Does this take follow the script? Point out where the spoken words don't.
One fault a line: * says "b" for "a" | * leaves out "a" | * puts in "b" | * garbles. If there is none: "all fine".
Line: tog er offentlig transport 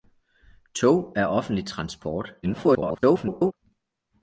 * garbles